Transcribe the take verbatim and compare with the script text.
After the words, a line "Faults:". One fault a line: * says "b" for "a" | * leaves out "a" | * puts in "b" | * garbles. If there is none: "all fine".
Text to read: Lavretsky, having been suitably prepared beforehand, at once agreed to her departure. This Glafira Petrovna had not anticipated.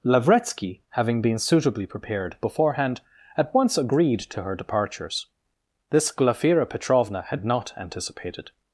Lavretsky, having been suitably prepared beforehand, at once agreed to her departures. This Glafira Petrovna had not anticipated.
Faults:
* says "departures" for "departure"